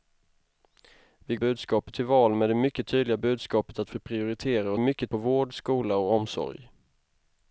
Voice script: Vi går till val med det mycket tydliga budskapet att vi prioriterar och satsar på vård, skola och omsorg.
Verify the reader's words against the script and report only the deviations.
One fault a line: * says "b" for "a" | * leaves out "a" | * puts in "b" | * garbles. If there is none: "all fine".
* says "budskapet" for "går"
* says "mycket" for "satsar"